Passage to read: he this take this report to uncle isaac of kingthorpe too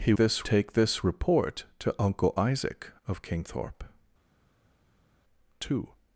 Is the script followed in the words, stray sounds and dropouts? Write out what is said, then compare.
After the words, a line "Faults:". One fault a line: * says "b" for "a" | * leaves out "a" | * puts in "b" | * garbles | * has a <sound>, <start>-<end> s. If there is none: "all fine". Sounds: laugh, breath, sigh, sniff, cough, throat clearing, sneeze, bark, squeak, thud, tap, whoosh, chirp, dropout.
he this take this report to uncle isaac of kingthorpe too
Faults:
all fine